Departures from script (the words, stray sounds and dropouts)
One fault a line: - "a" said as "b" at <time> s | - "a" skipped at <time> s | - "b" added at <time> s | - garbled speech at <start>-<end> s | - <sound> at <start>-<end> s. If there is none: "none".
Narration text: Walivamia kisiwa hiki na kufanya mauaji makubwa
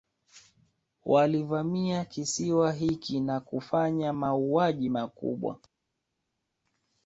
none